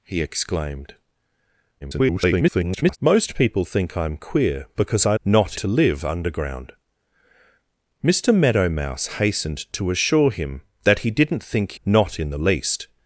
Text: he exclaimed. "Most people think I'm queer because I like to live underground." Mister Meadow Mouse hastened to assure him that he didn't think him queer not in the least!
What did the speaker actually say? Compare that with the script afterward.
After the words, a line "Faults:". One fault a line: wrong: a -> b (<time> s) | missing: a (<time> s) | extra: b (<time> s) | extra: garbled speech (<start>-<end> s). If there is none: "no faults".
he exclaimed. [garbled] "Most people think I'm queer because I not to live underground." Mister Meadow Mouse hastened to assure him that he didn't think not in the least!
Faults:
extra: garbled speech (1.8-3.0 s)
wrong: like -> not (5.2 s)
missing: him queer (11.8 s)